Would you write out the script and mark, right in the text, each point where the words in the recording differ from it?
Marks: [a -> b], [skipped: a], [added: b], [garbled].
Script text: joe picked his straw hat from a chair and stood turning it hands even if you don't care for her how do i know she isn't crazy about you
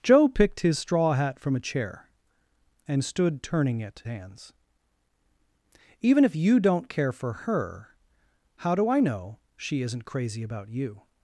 joe picked his straw hat from a chair and stood turning it hands even if you don't care for her how do i know she isn't crazy about you